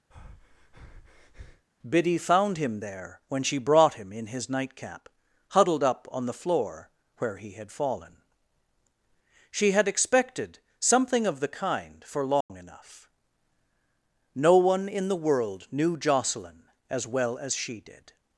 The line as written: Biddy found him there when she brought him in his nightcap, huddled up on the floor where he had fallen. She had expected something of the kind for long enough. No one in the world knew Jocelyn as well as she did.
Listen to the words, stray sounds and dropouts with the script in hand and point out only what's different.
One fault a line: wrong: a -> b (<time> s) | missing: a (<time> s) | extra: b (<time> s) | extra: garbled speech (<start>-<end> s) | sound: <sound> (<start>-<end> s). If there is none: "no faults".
sound: breath (0.1-1.7 s)
sound: dropout (12.4-12.5 s)